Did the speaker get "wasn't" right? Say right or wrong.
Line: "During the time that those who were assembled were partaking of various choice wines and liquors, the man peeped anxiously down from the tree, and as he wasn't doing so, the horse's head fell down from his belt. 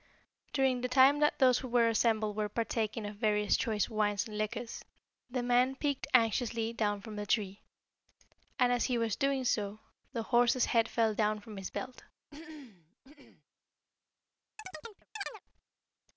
wrong